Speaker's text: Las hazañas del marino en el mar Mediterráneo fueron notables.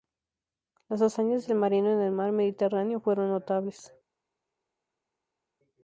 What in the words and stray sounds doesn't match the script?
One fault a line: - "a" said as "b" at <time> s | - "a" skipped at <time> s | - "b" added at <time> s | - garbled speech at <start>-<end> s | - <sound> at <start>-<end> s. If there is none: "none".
none